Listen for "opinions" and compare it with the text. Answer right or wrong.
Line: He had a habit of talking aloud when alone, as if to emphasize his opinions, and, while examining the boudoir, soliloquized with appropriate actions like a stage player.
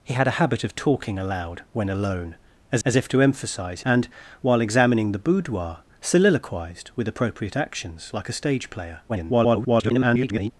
wrong